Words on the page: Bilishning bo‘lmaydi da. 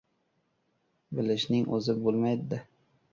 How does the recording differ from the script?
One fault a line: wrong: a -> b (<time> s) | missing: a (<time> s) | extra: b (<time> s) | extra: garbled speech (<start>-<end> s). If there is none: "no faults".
extra: o‘zi (1.8 s)